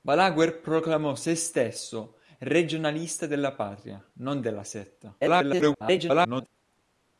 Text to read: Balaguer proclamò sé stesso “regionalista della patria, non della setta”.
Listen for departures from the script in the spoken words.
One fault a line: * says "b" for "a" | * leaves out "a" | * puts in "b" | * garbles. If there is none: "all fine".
* garbles